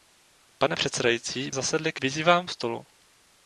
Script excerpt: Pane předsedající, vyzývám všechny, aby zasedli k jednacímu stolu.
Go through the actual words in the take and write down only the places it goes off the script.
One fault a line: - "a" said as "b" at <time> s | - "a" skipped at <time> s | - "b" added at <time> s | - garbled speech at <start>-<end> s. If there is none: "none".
- "vyzývám všechny aby" skipped at 1.5 s
- "jednacímu" said as "vyzývám" at 2.0 s